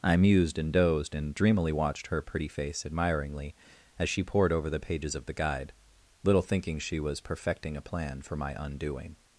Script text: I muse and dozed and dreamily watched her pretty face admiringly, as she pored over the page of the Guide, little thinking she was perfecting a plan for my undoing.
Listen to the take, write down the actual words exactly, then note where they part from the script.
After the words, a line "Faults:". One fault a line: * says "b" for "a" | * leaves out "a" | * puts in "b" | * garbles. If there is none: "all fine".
I mused and dozed and dreamily watched her pretty face admiringly, as she pored over the pages of the Guide, little thinking she was perfecting a plan for my undoing.
Faults:
* says "mused" for "muse"
* says "pages" for "page"